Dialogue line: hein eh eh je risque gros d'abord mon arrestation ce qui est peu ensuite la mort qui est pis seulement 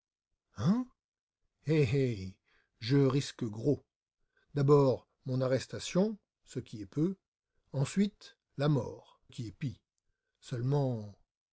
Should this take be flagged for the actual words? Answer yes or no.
no